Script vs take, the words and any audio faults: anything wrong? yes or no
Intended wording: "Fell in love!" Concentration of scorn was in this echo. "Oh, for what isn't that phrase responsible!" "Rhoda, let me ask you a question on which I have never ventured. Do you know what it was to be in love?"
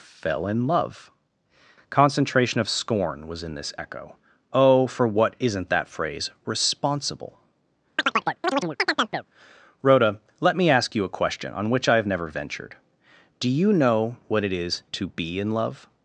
yes